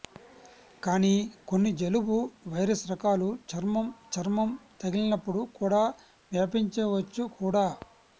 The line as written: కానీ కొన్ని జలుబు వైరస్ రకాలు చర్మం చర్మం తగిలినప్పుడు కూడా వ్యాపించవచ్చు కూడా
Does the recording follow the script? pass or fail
pass